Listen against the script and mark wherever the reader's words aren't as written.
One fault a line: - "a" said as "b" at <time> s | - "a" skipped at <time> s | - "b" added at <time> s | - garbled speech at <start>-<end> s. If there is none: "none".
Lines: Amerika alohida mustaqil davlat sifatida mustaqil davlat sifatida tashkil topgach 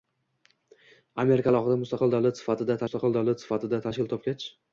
none